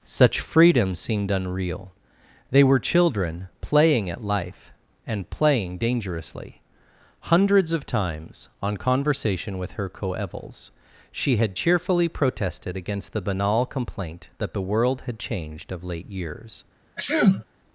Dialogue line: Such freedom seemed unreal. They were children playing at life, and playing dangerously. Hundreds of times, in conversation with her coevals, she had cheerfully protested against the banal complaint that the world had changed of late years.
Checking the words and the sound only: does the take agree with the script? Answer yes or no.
no